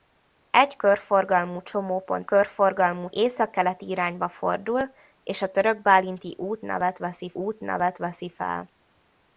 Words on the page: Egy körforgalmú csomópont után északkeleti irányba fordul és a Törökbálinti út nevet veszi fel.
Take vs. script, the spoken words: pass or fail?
fail